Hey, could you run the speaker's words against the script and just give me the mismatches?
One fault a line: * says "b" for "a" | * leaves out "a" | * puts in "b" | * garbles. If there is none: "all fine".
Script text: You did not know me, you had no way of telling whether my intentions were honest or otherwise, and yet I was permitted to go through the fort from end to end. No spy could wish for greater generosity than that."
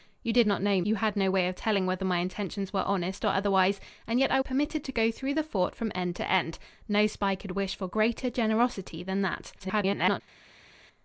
* leaves out "me"
* leaves out "was"
* garbles